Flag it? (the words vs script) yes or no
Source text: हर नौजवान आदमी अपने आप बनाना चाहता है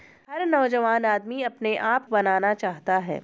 no